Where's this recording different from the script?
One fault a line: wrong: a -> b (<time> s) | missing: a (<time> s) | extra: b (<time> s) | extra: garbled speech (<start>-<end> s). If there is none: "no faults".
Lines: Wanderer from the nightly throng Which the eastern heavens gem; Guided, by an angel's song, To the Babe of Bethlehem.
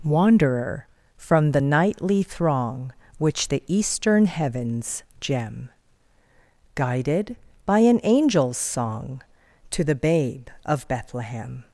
no faults